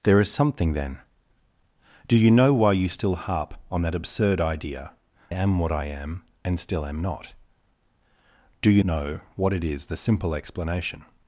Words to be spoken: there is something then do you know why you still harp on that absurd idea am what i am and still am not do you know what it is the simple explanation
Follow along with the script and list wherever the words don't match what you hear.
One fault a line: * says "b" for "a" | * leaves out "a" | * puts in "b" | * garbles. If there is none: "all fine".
all fine